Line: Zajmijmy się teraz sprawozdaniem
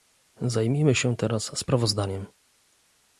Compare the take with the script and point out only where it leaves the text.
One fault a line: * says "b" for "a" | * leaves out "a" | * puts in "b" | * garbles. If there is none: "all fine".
all fine